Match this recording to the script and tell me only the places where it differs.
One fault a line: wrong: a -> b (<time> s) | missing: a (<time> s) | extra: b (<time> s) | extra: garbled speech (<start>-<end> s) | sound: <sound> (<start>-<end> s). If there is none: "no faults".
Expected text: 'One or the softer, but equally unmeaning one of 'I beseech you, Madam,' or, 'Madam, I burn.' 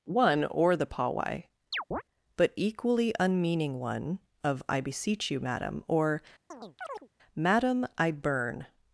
wrong: softer -> pawai (0.9 s)
sound: chirp (1.7-2.0 s)
sound: chirp (6.5-7.1 s)